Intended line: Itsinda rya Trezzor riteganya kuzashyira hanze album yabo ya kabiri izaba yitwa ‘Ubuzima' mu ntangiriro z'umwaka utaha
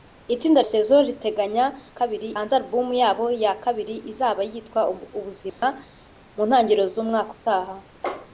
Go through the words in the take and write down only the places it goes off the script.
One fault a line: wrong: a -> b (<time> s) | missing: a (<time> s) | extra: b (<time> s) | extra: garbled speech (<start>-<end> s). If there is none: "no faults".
missing: rya (0.6 s)
wrong: kuzashyira -> kabiri (2.0 s)